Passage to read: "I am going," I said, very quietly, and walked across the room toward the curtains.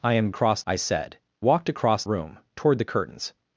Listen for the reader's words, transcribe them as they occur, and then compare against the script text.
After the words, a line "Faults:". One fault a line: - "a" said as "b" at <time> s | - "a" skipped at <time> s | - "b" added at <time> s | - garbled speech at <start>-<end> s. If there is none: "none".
"I am across," I said, walked across room toward the curtains.
Faults:
- "going" said as "across" at 0.3 s
- "very quietly and" skipped at 1.2 s
- "the" skipped at 2.0 s